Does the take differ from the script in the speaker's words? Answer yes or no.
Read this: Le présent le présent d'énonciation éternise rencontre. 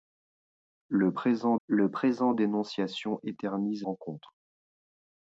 no